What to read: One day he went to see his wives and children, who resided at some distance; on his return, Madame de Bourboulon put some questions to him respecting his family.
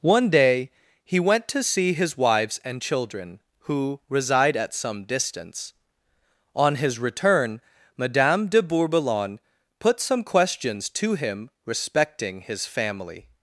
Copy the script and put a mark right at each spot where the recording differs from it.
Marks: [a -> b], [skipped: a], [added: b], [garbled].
One day he went to see his wives and children, who [resided -> reside] at some distance; on his return, Madame de Bourboulon put some questions to him respecting his family.